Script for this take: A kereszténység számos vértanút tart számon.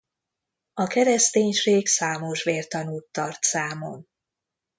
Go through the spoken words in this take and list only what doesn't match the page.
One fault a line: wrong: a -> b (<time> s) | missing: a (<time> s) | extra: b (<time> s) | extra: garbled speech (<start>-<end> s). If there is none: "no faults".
no faults